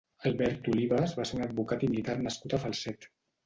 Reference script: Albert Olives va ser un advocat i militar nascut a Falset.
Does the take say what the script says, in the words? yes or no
yes